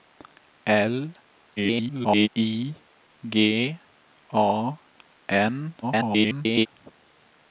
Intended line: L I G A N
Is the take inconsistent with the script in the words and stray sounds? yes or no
yes